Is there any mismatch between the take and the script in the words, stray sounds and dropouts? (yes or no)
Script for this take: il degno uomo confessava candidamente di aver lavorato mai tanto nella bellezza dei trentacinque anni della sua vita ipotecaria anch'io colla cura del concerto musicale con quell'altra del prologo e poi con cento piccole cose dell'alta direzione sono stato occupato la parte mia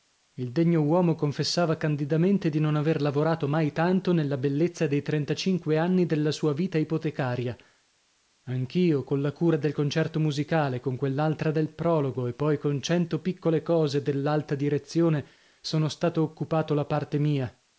yes